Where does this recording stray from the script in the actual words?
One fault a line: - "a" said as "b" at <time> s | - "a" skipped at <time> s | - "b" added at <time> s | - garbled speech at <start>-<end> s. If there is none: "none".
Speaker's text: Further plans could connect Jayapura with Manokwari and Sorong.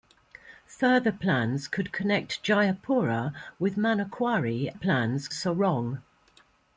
- "and" said as "plans" at 4.7 s